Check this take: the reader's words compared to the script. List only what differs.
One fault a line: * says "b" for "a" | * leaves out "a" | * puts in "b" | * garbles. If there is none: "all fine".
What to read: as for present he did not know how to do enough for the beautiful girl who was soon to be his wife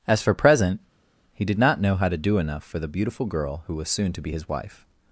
all fine